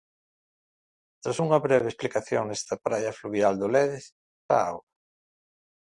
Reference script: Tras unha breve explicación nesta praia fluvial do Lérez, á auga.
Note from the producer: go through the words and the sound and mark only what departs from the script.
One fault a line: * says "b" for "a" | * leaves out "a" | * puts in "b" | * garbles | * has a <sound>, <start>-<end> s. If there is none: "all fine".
all fine